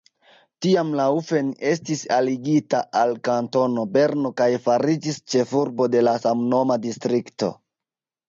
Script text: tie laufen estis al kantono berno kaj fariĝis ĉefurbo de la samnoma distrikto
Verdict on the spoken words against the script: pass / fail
fail